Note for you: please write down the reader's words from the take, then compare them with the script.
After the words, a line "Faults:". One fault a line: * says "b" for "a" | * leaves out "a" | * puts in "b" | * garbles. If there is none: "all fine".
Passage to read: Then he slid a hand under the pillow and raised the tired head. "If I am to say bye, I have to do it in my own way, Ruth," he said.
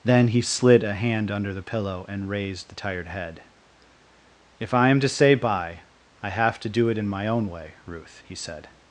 Then he slid a hand under the pillow and raised the tired head. "If I am to say bye, I have to do it in my own way, Ruth," he said.
Faults:
all fine